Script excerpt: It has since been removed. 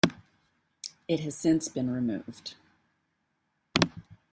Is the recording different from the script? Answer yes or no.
no